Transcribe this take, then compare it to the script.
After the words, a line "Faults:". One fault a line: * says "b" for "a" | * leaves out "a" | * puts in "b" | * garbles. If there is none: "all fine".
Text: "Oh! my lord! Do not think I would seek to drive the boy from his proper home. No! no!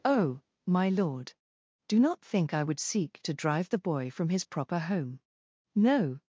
"Oh! my lord! Do not think I would seek to drive the boy from his proper home. No!
Faults:
* leaves out "no"